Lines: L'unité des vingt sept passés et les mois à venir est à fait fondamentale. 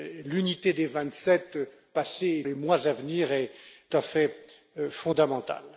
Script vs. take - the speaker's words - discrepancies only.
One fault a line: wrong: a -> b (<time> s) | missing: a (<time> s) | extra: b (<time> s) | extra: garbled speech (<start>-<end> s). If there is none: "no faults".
no faults